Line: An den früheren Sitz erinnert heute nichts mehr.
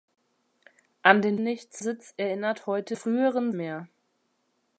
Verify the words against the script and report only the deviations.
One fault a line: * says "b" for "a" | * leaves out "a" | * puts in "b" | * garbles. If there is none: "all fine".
* says "nichts" for "früheren"
* says "früheren" for "nichts"